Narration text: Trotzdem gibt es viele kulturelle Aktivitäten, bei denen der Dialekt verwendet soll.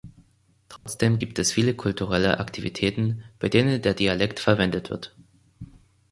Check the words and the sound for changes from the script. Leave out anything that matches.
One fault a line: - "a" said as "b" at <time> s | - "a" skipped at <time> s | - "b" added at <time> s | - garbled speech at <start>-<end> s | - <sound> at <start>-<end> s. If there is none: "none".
- dropout at 0.8-0.9 s
- "soll" said as "wird" at 4.9 s